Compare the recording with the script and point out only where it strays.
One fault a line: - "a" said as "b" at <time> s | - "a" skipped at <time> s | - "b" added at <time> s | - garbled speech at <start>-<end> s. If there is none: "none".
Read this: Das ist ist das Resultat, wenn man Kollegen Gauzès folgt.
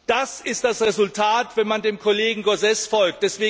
- "ist" skipped at 0.6 s
- "dem" added at 1.8 s